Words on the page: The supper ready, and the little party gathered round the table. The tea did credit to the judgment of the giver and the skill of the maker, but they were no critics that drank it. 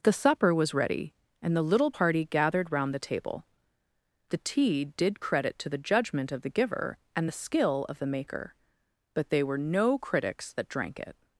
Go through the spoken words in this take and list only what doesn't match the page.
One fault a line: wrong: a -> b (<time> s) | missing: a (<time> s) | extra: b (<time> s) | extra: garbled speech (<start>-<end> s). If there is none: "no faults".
extra: was (0.6 s)